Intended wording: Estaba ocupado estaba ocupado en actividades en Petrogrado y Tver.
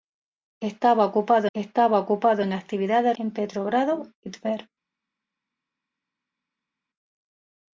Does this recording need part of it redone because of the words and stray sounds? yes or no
no